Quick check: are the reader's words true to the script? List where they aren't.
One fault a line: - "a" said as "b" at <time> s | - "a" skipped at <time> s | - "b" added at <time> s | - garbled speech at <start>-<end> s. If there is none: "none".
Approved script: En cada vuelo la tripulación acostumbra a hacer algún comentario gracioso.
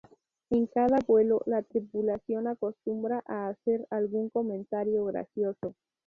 none